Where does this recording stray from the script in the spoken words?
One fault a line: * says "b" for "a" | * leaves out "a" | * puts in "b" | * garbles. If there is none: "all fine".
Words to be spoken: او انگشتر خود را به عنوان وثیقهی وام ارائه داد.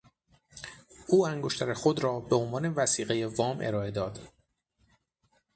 all fine